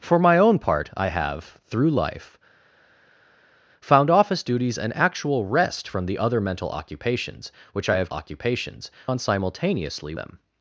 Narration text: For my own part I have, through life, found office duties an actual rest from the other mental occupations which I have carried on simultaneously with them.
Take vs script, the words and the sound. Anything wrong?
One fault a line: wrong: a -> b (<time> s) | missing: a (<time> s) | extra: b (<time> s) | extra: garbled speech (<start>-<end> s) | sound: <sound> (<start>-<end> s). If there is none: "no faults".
wrong: carried -> occupations (8.1 s)
missing: with (10.1 s)